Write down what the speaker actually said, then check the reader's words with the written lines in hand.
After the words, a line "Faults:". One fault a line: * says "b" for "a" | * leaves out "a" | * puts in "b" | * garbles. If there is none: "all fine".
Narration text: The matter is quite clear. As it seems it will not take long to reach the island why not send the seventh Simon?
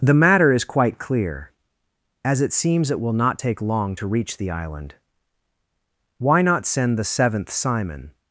The matter is quite clear. As it seems it will not take long to reach the island why not send the seventh Simon?
Faults:
all fine